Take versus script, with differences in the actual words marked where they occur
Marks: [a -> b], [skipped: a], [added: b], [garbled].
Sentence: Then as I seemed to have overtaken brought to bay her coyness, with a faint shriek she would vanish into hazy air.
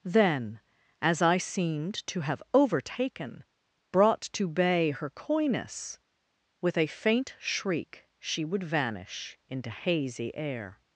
Then as I seemed to have overtaken brought to bay her coyness, with a faint shriek she would vanish into hazy air.